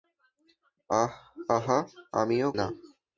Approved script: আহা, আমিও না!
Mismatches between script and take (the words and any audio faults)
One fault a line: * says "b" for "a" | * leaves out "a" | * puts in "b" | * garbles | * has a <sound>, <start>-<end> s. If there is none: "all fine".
all fine